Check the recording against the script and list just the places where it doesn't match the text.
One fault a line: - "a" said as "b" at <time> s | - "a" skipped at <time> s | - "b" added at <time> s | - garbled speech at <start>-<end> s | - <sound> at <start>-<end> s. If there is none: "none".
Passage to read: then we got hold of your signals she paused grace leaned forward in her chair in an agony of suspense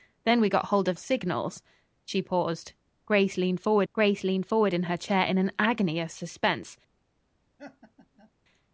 - "your" skipped at 1.0 s
- "grace leaned forward" added at 3.9 s
- laugh at 7.6-8.3 s